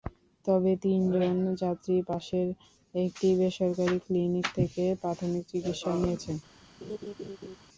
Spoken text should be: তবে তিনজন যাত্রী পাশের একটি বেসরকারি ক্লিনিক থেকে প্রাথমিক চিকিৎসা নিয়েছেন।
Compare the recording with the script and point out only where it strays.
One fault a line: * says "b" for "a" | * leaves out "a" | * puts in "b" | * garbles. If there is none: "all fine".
all fine